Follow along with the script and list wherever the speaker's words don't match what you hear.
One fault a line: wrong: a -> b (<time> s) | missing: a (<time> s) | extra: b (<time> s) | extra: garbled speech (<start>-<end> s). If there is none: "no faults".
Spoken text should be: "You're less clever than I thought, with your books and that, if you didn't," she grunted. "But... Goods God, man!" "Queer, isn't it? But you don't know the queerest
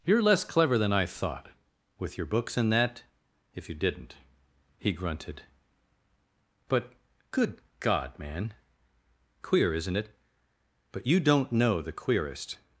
wrong: she -> he (4.8 s)
wrong: Goods -> Good (7.3 s)